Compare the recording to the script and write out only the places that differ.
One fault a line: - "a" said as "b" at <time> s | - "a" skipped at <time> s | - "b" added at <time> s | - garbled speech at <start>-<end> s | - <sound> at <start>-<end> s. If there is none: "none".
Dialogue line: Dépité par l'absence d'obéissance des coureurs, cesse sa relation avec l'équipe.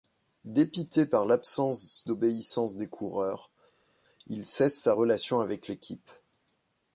- "il" added at 4.3 s